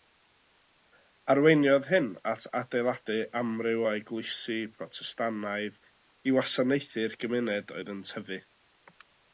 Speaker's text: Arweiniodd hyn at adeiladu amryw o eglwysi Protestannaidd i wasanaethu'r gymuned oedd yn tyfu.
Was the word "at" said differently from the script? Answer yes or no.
no